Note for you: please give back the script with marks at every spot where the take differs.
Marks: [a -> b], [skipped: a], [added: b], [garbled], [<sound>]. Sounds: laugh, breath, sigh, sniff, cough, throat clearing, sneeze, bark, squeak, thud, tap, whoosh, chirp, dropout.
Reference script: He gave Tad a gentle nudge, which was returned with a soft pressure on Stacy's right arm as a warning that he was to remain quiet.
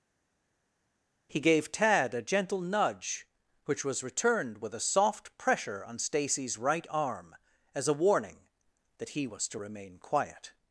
He gave Tad a gentle nudge, which was returned with a soft pressure on Stacy's right arm as a warning that he was to remain quiet.